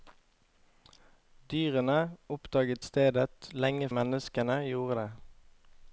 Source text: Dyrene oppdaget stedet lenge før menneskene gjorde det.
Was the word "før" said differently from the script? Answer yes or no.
yes